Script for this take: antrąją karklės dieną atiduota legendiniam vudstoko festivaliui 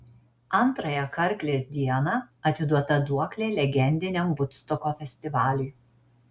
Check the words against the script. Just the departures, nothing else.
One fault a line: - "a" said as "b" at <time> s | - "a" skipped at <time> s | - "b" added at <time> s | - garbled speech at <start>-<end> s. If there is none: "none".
- "duoklė" added at 3.1 s